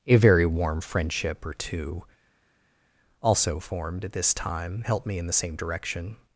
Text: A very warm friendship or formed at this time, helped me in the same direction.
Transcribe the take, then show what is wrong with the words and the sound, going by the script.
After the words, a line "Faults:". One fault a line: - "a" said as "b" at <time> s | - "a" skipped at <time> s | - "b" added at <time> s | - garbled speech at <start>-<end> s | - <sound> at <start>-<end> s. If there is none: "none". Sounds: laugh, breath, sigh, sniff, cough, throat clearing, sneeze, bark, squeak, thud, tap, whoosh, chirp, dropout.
A very warm friendship or two, also formed at this time, helped me in the same direction.
Faults:
- "two also" added at 1.5 s